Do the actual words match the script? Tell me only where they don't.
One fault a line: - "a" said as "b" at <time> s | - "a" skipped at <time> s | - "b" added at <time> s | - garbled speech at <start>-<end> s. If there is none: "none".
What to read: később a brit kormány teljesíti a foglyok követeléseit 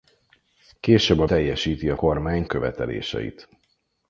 - "brit kormány" skipped at 1.3 s
- "foglyok" said as "kormány" at 1.9 s